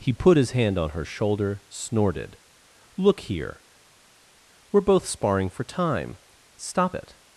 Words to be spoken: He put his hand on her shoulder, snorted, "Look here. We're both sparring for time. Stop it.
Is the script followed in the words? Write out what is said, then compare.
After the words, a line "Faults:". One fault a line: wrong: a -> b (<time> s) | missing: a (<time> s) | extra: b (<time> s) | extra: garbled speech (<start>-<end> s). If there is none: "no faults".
He put his hand on her shoulder, snorted, "Look here. We're both sparring for time. Stop it.
Faults:
no faults